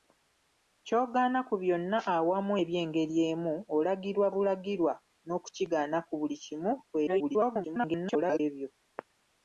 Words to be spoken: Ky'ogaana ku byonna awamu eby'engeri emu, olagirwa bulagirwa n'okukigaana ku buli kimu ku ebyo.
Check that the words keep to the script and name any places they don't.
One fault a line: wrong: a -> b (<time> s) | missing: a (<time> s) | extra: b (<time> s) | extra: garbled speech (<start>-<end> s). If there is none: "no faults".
extra: garbled speech (7.1-8.4 s)